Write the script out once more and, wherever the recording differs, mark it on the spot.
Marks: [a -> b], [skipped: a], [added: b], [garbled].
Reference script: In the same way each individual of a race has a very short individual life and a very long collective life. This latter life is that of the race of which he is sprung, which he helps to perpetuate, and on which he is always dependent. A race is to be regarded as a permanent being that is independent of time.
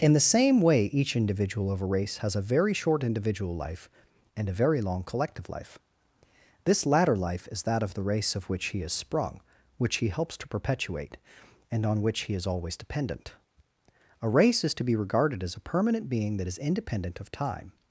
In the same way each individual of a race has a very short individual life and a very long collective life. This latter life is that of the race of which he is sprung, which he helps to perpetuate, and on which he is always dependent. A race is to be regarded as a permanent being that is independent of time.